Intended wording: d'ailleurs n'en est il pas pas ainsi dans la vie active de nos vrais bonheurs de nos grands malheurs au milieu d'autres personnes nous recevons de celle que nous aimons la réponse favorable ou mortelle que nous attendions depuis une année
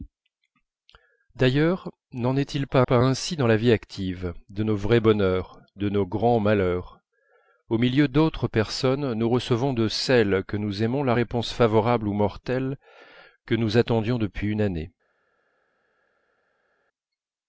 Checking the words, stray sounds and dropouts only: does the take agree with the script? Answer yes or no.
yes